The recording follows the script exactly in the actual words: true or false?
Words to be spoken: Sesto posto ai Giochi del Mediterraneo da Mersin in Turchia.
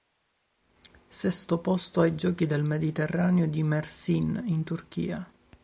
false